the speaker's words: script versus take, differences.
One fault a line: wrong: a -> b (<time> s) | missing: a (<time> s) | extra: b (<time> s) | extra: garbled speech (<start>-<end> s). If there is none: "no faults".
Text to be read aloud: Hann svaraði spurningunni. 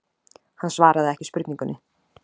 extra: ekki (1.1 s)